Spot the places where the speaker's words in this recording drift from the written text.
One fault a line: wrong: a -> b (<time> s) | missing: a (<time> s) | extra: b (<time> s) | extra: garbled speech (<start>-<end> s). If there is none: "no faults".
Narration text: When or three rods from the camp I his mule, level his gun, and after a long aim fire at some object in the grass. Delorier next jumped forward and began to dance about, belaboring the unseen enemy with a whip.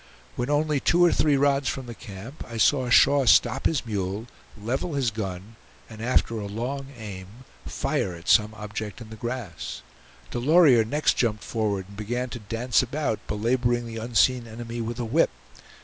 extra: only two (0.5 s)
extra: saw Shaw stop (2.6 s)